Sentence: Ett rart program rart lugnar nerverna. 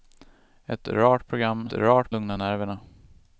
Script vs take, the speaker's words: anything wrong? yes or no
no